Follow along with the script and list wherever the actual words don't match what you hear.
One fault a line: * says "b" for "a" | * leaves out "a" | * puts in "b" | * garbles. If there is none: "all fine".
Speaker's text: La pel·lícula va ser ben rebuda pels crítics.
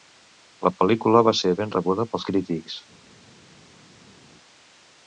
all fine